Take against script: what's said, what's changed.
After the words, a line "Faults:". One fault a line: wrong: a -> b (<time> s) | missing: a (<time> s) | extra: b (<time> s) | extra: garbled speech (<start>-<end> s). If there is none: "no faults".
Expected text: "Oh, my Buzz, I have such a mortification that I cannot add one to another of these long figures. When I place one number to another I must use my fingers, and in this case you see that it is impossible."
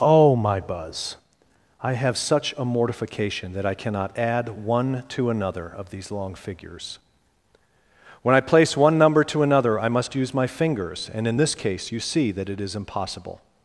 "Oh, my Buzz, I have such a mortification that I cannot add one to another of these long figures. When I place one number to another I must use my fingers, and in this case you see that it is impossible."
Faults:
no faults